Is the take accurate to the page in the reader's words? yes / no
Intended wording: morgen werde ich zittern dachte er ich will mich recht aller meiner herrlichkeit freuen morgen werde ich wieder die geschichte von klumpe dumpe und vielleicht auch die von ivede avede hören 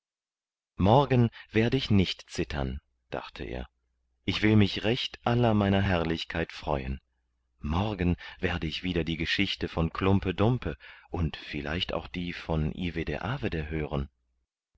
no